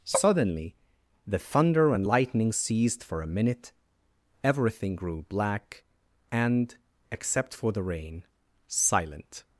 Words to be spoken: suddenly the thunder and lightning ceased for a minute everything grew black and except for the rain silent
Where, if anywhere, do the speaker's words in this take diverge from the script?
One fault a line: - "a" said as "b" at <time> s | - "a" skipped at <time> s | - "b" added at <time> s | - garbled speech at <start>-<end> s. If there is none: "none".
none